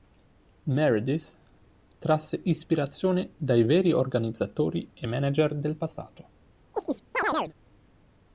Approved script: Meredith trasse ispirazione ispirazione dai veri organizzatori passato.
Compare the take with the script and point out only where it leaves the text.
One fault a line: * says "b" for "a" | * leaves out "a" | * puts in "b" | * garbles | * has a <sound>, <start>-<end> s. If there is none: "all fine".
* leaves out "ispirazione"
* puts in "e manager del"
* has a chirp, 6.7-7.5 s